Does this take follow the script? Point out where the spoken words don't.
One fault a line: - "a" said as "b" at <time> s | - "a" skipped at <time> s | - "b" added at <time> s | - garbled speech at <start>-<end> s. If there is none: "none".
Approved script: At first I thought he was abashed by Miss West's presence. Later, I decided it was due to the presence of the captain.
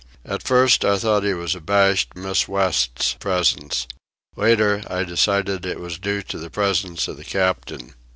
- "by" skipped at 2.2 s